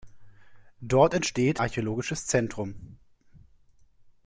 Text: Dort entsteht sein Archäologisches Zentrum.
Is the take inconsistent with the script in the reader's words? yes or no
yes